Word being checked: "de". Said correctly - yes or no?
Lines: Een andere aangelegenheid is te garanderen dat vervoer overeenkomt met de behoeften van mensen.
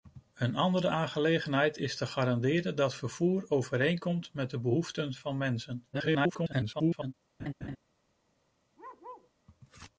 yes